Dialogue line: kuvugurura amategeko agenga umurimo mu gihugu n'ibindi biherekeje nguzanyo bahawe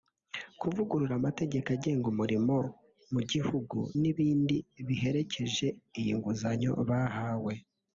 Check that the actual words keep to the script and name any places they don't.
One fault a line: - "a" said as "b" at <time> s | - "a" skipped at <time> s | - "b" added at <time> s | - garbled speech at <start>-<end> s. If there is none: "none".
- "iyi" added at 6.0 s